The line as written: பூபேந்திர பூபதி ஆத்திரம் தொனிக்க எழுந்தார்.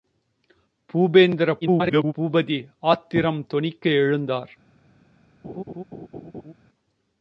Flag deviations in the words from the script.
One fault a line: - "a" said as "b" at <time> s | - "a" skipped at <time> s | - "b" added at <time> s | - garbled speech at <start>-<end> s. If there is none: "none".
- garbled speech at 1.6-2.1 s